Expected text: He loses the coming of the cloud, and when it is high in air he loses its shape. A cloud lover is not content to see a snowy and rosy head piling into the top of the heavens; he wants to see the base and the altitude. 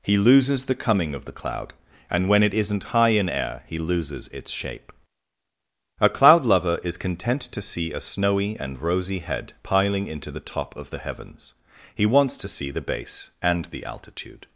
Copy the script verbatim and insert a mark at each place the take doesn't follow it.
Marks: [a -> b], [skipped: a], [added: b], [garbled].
He loses the coming of the cloud, and when it [is -> isn't] high in air he loses its shape. A cloud lover is [skipped: not] content to see a snowy and rosy head piling into the top of the heavens; he wants to see the base and the altitude.